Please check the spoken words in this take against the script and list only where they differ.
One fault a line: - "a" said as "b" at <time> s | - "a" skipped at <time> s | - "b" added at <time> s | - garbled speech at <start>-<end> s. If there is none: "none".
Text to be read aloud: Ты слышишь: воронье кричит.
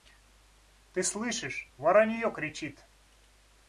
none